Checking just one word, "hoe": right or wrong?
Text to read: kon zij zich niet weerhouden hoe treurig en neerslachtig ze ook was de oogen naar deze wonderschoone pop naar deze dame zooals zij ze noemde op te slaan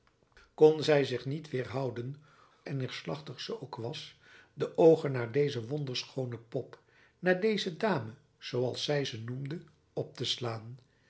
wrong